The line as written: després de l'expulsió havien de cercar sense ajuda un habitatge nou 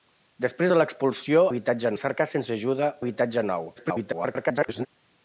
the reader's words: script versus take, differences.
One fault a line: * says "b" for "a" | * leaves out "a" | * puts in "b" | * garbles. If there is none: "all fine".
* says "habitatge" for "havien"
* leaves out "un"
* garbles